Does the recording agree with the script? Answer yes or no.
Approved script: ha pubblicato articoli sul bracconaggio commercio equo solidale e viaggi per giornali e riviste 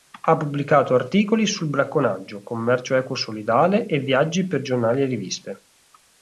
yes